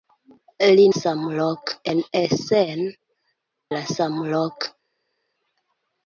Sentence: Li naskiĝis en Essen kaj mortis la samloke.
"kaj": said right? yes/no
no